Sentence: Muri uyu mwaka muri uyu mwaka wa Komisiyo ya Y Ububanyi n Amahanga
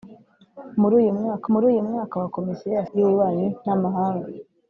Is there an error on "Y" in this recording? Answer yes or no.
no